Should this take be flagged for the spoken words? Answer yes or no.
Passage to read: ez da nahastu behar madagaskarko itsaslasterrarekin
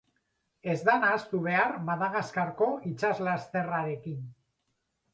no